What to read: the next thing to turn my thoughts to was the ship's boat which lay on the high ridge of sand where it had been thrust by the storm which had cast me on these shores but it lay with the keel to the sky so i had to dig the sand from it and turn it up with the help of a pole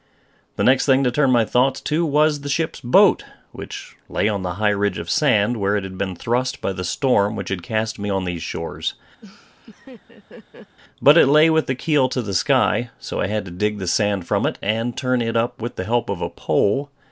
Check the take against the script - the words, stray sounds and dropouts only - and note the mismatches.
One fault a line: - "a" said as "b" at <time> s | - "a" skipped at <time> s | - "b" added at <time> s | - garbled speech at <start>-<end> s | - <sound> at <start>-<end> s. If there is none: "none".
- laugh at 9.2-10.8 s